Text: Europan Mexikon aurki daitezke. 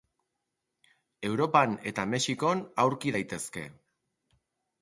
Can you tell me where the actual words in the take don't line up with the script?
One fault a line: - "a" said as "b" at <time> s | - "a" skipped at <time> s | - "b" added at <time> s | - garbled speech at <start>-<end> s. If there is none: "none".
- "eta" added at 1.9 s